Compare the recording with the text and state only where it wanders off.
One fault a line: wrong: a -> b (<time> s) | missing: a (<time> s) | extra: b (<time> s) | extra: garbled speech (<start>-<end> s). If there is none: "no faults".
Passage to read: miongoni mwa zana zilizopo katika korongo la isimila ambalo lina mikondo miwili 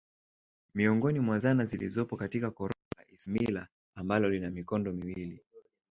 no faults